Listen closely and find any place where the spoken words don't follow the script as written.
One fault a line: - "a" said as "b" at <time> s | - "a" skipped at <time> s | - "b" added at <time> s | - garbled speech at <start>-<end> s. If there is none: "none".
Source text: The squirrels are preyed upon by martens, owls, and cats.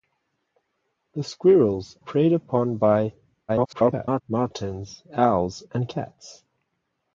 - "are" skipped at 2.0 s
- garbled speech at 3.5-4.2 s